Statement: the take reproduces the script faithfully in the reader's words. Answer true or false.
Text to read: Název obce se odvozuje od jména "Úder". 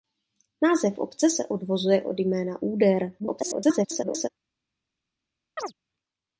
false